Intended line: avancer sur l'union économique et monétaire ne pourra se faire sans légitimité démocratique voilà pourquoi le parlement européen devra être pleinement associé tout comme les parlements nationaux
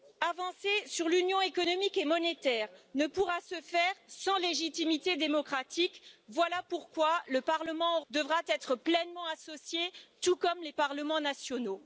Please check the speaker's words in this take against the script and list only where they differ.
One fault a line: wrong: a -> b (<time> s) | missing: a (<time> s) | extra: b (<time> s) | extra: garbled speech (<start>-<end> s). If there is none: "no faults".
missing: européen (8.0 s)